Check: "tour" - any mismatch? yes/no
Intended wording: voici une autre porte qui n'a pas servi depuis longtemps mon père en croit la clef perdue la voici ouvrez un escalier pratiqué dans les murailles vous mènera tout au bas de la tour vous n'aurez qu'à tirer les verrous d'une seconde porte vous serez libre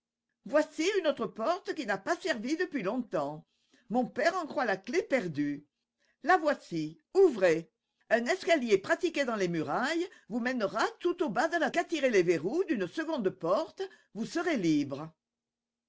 yes